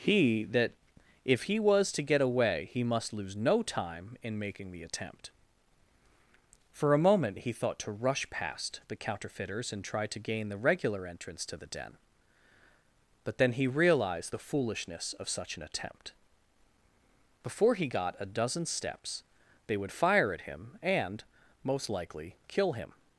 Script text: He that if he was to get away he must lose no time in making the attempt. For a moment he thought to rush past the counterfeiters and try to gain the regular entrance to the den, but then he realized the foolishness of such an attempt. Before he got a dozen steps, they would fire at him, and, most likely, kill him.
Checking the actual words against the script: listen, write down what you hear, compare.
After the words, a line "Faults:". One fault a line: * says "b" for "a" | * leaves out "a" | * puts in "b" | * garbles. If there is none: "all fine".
He that if he was to get away he must lose no time in making the attempt. For a moment he thought to rush past the counterfeiters and try to gain the regular entrance to the den, but then he realized the foolishness of such an attempt. Before he got a dozen steps, they would fire at him, and, most likely, kill him.
Faults:
all fine